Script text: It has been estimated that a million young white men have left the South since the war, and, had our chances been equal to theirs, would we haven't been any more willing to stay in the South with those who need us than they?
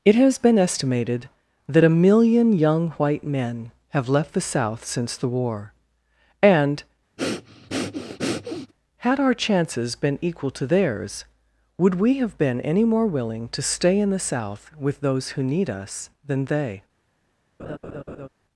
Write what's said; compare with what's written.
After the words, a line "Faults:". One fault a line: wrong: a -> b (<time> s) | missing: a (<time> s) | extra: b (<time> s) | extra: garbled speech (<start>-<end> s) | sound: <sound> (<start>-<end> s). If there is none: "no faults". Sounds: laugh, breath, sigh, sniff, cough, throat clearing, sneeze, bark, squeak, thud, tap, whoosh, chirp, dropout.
It has been estimated that a million young white men have left the South since the war, and, had our chances been equal to theirs, would we have been any more willing to stay in the South with those who need us than they?
Faults:
sound: breath (7.2-8.7 s)
wrong: haven't -> have (12.1 s)
sound: laugh (17.6-18.3 s)